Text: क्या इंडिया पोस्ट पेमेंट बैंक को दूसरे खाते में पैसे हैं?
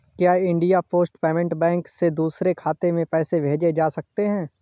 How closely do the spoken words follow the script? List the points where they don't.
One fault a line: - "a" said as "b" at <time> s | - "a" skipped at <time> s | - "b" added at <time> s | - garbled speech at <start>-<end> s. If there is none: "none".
- "को" said as "से" at 1.9 s
- "भेजे जा सकते" added at 3.4 s